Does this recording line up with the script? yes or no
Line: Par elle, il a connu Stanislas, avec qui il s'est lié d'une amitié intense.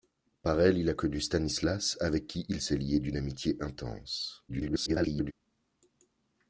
no